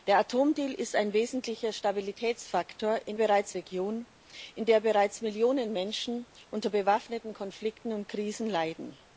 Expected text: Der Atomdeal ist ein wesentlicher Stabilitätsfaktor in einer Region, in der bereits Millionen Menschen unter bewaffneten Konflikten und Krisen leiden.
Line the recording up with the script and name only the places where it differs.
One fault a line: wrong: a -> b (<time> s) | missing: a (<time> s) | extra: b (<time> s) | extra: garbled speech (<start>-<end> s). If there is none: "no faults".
wrong: einer -> bereits (3.2 s)